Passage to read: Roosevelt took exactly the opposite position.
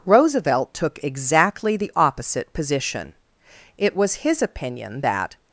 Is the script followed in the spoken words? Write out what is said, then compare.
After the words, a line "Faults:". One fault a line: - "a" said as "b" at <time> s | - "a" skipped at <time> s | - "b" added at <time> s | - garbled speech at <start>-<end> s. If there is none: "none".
Roosevelt took exactly the opposite position. It was his opinion that
Faults:
- "It was his opinion that" added at 3.8 s